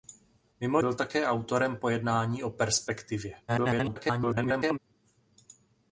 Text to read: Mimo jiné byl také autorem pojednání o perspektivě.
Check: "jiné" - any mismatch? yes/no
yes